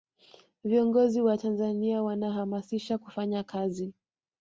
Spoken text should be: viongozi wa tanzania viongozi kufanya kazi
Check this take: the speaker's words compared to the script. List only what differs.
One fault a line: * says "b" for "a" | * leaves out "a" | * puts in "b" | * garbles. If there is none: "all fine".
* says "wanahamasisha" for "viongozi"